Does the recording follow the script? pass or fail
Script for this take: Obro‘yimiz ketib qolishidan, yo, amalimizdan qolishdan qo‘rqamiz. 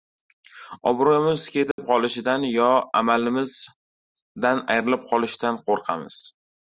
fail